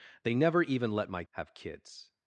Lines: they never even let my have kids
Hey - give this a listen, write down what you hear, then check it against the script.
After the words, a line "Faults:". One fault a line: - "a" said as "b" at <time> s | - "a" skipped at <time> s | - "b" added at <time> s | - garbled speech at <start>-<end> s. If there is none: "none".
they never even let my have kids
Faults:
none